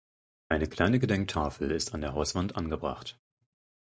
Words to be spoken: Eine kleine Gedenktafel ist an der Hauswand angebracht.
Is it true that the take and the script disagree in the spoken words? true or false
false